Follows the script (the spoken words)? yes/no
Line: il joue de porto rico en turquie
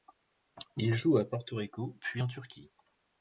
no